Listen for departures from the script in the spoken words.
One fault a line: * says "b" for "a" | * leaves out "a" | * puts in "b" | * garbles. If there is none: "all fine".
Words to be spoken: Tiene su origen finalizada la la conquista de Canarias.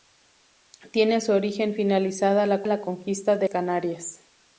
all fine